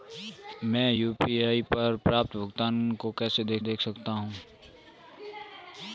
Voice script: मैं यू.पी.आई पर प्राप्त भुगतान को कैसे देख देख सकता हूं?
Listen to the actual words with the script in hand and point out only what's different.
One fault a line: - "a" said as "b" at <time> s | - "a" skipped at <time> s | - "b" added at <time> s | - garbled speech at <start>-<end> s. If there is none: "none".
none